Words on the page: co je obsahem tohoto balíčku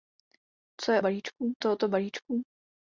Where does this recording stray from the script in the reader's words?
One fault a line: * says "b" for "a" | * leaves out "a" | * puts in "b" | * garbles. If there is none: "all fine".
* says "balíčku" for "obsahem"